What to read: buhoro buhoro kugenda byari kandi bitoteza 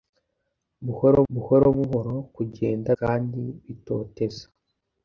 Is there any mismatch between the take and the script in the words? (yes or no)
yes